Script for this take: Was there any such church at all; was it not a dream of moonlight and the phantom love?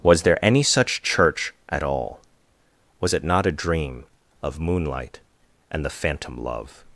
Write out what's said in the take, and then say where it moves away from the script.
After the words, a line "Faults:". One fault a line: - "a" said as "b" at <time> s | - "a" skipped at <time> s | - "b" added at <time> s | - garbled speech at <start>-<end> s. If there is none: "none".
Was there any such church at all; was it not a dream of moonlight and the phantom love?
Faults:
none